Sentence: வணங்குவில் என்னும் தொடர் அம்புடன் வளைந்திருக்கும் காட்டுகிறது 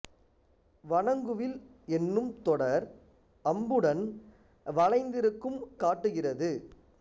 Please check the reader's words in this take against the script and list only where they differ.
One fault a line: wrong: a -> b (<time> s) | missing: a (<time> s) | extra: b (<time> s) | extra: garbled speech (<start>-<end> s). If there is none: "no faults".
no faults